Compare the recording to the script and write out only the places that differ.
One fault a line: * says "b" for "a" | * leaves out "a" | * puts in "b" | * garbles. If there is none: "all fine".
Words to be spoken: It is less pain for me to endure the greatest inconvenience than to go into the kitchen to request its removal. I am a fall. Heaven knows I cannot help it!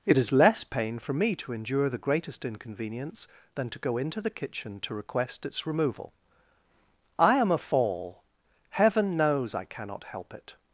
all fine